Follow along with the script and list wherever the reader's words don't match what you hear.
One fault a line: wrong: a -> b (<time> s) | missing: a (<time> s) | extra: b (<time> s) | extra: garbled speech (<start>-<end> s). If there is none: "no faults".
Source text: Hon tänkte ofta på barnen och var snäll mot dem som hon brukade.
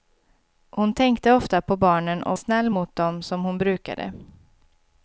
missing: var (2.4 s)